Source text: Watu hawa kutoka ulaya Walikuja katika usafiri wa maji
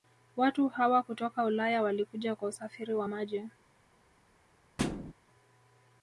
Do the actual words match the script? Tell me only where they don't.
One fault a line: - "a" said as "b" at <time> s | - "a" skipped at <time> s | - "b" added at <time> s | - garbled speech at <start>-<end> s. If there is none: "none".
- "katika" said as "kwa" at 2.4 s